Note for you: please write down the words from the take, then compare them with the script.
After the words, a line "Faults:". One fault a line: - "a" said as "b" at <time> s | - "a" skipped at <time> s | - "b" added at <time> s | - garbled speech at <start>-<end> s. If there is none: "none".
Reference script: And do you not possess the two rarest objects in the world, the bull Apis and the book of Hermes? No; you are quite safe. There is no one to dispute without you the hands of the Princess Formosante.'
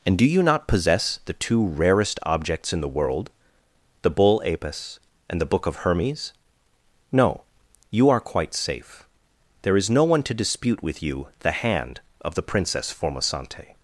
And do you not possess the two rarest objects in the world, the bull Apis and the book of Hermes? No; you are quite safe. There is no one to dispute with you the hand of the Princess Formosante.'
Faults:
- "without" said as "with" at 10.8 s
- "hands" said as "hand" at 11.5 s